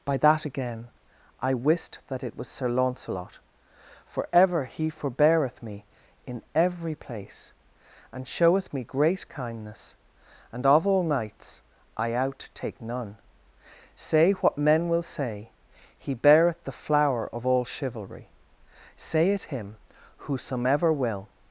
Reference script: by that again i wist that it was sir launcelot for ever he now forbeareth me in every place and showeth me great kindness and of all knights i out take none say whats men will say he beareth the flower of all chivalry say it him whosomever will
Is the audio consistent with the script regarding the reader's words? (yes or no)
no